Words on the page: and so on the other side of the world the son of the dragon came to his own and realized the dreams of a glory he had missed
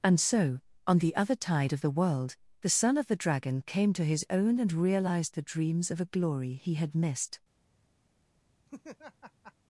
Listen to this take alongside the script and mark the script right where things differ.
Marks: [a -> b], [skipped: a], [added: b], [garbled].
and so on the other [side -> tide] of the world the son of the dragon came to his own and realized the dreams of a glory he had missed